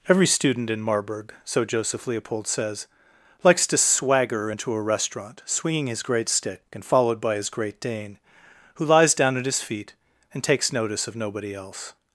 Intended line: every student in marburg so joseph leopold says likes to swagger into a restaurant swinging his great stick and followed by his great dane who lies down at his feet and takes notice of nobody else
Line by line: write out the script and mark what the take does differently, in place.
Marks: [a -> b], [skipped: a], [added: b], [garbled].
every student in marburg so joseph leopold says likes to swagger into a restaurant swinging his great stick and followed by his great dane who lies down at his feet and takes notice of nobody else